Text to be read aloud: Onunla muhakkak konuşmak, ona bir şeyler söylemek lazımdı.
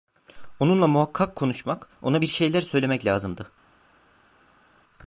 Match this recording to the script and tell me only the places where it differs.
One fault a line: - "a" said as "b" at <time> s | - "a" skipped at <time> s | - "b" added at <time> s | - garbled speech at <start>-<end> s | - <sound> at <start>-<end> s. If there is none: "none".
none